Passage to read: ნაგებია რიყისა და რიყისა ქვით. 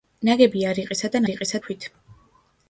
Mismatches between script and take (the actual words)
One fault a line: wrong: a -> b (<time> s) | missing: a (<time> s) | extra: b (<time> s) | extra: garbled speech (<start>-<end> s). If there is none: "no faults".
no faults